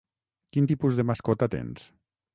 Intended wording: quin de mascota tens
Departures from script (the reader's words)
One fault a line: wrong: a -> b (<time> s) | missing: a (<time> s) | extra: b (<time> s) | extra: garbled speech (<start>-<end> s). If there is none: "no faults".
extra: tipus (0.7 s)